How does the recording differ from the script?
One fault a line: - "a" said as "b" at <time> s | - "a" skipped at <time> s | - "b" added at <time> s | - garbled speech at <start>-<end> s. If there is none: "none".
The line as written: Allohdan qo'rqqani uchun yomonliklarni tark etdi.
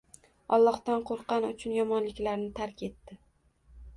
none